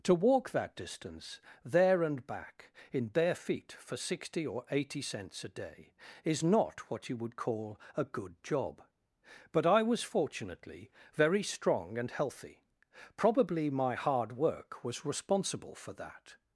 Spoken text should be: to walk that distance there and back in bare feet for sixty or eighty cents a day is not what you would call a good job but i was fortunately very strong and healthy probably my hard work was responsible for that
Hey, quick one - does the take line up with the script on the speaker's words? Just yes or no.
yes